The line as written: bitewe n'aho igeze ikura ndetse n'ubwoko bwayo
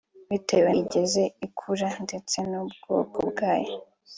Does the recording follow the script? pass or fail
fail